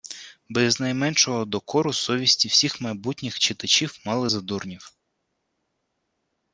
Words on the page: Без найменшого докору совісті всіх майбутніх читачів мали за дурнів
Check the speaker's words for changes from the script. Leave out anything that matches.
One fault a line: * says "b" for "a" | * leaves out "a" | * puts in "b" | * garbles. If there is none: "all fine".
all fine